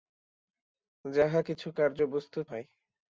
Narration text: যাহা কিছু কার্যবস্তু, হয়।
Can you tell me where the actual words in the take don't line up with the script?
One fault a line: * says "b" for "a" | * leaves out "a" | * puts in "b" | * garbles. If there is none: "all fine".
all fine